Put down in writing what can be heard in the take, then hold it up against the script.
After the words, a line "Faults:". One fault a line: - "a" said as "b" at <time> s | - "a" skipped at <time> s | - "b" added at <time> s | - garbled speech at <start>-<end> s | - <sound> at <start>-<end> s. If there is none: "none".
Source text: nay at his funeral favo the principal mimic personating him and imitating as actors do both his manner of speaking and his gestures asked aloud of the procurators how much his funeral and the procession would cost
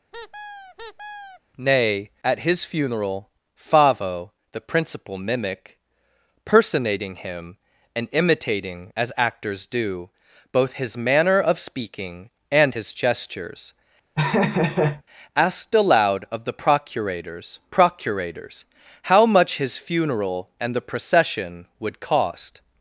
nay at his funeral favo the principal mimic personating him and imitating as actors do both his manner of speaking and his gestures asked aloud of the procurators procurators how much his funeral and the procession would cost
Faults:
- squeak at 0.1-1.4 s
- laugh at 14.1-15.0 s
- "procurators" added at 17.7 s